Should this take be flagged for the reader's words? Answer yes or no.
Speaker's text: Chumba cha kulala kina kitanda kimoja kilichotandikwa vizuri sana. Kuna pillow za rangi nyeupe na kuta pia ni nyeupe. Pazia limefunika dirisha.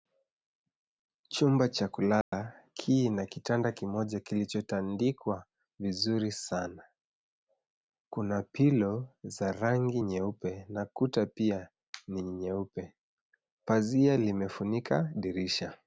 no